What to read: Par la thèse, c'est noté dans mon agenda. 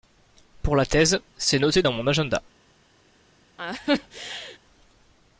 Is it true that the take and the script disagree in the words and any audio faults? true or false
true